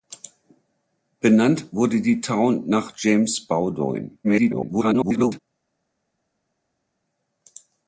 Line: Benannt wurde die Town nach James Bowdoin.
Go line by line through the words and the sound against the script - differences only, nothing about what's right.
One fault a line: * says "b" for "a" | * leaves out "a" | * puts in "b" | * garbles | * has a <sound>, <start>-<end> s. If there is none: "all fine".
* garbles